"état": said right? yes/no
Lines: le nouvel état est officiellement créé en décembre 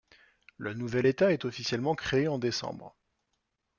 yes